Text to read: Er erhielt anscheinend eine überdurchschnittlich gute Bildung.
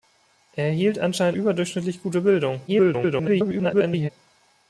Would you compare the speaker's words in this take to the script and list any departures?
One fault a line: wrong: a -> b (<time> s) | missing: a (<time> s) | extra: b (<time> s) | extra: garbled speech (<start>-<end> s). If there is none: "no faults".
missing: eine (1.4 s)
extra: garbled speech (2.7-4.1 s)